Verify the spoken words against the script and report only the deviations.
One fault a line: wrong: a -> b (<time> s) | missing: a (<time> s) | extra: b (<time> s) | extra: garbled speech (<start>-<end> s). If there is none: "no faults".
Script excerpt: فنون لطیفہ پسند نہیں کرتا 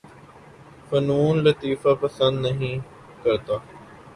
no faults